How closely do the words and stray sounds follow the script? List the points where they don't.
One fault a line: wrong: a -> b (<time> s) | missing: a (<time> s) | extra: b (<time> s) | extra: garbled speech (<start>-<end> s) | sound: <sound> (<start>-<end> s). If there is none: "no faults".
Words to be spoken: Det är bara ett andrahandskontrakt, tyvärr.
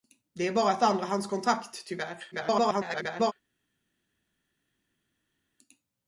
extra: garbled speech (2.3-3.3 s)